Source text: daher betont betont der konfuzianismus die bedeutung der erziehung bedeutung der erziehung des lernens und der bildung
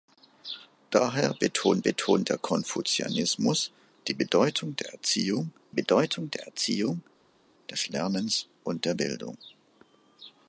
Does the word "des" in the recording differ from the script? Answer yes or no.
no